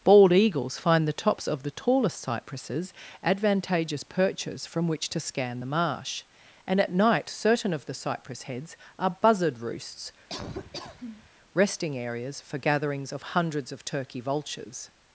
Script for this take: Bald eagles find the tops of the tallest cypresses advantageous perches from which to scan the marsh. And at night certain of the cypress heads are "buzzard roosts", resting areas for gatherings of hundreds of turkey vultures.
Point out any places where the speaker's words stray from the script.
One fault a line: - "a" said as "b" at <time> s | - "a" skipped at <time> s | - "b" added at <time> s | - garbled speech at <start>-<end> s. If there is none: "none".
none